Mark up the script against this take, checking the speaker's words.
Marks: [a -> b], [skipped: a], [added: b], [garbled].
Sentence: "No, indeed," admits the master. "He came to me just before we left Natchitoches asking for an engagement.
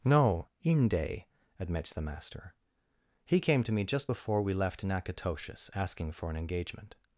"No, [indeed," -> inde] admits the master. "He came to me just before we left Natchitoches asking for an engagement.